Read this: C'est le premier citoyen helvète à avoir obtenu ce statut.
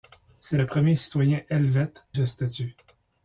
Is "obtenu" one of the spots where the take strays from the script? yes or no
yes